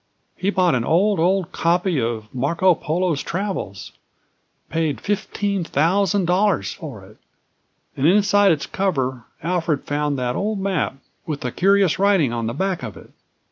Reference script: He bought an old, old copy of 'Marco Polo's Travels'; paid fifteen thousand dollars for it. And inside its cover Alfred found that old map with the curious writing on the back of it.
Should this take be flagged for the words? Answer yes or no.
no